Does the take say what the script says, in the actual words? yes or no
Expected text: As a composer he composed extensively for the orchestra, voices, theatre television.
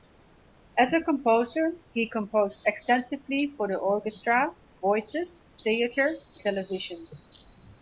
yes